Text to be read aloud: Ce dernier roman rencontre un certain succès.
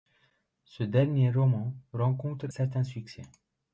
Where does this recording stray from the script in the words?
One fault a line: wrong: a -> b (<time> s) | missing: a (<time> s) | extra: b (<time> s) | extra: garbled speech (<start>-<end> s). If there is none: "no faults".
missing: un (2.5 s)